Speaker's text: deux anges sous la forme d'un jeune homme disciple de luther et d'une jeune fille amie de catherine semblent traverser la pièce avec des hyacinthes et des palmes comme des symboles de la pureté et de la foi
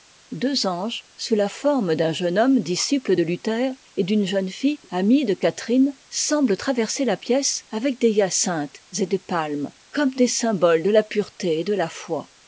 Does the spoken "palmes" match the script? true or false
true